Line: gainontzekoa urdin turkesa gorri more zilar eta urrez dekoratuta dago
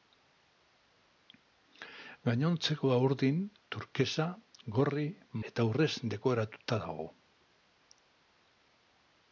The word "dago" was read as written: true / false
true